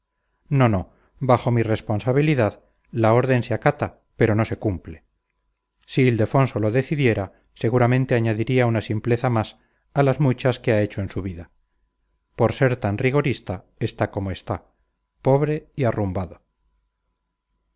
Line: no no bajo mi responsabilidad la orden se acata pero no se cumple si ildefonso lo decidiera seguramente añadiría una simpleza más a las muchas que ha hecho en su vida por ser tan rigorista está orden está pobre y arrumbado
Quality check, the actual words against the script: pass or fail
fail